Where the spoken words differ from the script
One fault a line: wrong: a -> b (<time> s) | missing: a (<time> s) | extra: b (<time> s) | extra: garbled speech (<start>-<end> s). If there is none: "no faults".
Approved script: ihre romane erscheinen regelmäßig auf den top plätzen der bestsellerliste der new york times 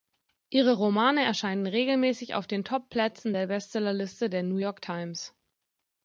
no faults